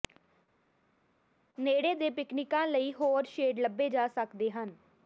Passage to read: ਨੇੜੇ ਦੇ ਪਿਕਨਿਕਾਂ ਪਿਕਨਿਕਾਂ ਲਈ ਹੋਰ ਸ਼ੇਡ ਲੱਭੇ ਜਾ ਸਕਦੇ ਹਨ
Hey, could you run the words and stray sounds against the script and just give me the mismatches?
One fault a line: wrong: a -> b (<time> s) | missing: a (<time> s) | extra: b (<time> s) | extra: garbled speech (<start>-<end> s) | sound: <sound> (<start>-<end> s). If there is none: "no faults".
missing: ਪਿਕਨਿਕਾਂ (2.7 s)